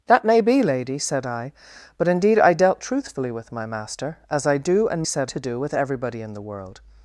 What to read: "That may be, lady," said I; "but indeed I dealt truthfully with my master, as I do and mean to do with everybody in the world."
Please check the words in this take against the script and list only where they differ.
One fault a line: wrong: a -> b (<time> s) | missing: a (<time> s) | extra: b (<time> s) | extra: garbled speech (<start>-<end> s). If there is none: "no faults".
wrong: mean -> said (5.0 s)